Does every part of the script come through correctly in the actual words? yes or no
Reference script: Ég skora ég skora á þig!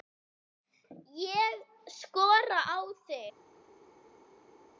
no